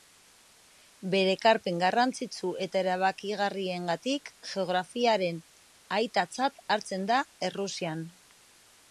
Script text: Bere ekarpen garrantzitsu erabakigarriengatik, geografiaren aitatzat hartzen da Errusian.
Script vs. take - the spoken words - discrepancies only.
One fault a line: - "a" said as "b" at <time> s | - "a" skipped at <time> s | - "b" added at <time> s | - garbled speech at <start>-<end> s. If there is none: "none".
- "eta" added at 2.6 s